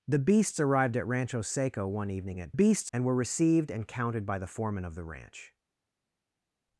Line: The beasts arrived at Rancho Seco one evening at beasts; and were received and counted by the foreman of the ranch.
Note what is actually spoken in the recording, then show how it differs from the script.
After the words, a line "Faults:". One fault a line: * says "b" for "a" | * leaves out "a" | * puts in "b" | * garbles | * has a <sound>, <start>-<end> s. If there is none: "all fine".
The beasts arrived at Rancho Seco one evening at beasts; and were received and counted by the foreman of the ranch.
Faults:
all fine